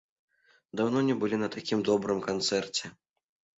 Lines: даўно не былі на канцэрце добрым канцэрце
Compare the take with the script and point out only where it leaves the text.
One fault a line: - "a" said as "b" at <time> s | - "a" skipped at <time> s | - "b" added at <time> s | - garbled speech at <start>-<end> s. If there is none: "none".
- "канцэрце" said as "такім" at 1.6 s